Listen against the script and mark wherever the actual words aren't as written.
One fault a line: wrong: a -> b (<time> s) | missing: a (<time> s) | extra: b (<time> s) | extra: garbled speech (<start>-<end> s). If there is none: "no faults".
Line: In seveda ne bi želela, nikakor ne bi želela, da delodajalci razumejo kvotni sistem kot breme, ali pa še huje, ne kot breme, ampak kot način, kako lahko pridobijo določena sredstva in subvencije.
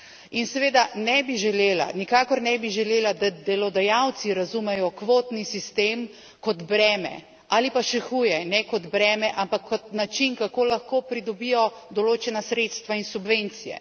no faults